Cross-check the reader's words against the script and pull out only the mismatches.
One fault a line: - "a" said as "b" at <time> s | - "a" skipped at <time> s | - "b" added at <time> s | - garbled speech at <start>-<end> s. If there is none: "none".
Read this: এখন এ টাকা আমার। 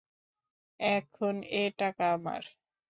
none